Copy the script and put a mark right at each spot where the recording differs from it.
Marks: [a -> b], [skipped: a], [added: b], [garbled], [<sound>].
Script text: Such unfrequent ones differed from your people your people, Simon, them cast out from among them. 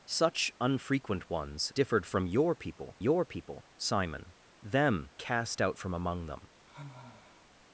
Such unfrequent ones differed from your people your people, Simon, them cast out from among them. [sigh]